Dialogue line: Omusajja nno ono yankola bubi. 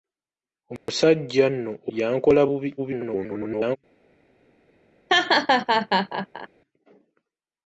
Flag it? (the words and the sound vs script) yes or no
yes